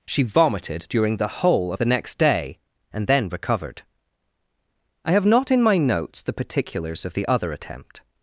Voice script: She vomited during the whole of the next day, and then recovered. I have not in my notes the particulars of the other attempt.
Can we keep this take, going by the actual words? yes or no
yes